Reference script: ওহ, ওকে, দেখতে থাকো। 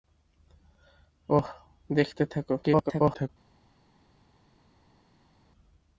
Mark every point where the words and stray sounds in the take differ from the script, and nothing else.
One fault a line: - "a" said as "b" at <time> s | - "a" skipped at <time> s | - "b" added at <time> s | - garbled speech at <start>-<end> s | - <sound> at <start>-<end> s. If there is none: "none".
- "ওকে" skipped at 1.5 s
- garbled speech at 2.6-3.3 s